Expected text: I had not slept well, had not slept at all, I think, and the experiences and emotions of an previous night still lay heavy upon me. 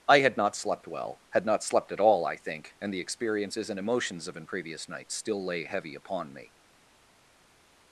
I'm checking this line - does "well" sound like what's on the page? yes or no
yes